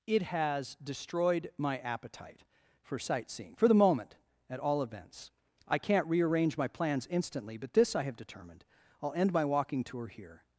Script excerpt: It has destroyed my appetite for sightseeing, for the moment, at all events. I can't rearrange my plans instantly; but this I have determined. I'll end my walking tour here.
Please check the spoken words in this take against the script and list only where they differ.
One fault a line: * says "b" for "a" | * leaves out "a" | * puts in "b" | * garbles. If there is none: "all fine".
all fine